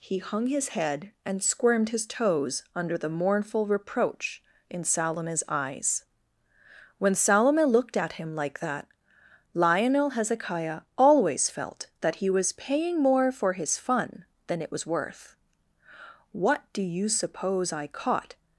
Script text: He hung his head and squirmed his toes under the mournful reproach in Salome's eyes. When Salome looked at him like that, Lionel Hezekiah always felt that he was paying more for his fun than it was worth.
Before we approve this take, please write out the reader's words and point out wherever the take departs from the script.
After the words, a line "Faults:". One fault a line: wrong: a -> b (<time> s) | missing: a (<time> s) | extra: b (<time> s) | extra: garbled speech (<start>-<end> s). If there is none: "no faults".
He hung his head and squirmed his toes under the mournful reproach in Salome's eyes. When Salome looked at him like that, Lionel Hezekiah always felt that he was paying more for his fun than it was worth. "What do you suppose I caught
Faults:
extra: What do you suppose I caught (16.3 s)